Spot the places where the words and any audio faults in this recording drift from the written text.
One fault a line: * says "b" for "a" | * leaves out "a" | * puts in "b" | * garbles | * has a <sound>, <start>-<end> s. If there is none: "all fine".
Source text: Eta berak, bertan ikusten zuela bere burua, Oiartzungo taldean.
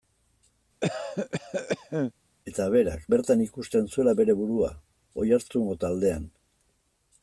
* has a cough, 0.8-2.1 s